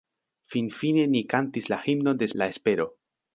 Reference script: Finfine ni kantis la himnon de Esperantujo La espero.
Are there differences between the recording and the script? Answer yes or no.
yes